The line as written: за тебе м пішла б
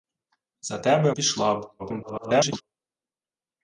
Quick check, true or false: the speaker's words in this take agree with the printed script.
false